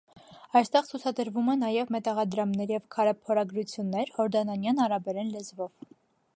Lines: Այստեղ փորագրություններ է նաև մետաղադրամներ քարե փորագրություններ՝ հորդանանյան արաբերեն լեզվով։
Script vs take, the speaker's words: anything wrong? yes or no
yes